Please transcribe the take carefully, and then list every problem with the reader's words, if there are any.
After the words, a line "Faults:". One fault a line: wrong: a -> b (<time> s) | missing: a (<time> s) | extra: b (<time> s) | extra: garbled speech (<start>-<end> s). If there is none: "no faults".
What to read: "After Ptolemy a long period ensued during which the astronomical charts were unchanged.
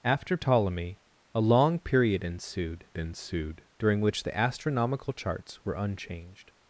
"After Ptolemy a long period ensued ensued during which the astronomical charts were unchanged.
Faults:
extra: ensued (3.0 s)